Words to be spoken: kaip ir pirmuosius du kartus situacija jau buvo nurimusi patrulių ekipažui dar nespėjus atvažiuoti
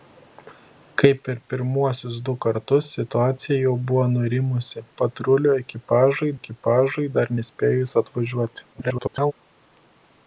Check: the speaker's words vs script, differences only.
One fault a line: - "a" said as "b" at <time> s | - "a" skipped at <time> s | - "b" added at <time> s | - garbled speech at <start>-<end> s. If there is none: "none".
- "ekipažui" added at 6.4 s
- garbled speech at 8.7-9.3 s